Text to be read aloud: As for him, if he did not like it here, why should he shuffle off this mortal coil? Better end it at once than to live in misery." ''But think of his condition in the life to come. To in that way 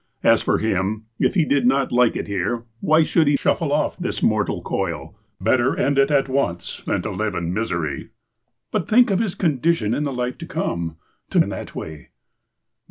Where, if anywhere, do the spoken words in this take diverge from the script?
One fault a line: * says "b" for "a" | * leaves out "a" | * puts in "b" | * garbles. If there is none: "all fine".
all fine